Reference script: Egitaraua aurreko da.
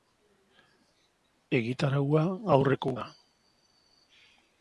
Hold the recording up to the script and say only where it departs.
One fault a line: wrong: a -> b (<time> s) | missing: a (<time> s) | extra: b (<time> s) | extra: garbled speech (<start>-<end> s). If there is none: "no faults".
no faults